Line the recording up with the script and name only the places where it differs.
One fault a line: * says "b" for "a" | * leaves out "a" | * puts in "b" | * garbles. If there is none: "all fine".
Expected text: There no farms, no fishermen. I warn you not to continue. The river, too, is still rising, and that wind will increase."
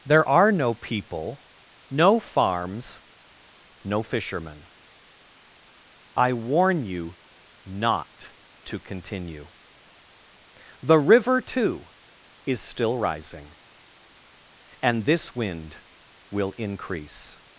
* puts in "are"
* puts in "people no"
* says "this" for "that"